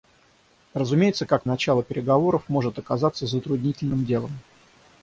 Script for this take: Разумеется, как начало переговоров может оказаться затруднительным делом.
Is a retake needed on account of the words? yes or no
no